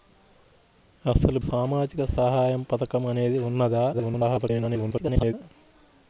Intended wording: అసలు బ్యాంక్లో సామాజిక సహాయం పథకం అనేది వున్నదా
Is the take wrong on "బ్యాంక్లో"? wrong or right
wrong